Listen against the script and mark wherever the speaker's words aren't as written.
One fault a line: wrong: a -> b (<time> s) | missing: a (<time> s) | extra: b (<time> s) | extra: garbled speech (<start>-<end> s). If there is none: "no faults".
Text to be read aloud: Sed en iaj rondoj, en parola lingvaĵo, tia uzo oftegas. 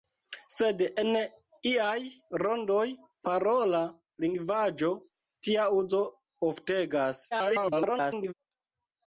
missing: en (2.9 s)
extra: garbled speech (7.3-8.3 s)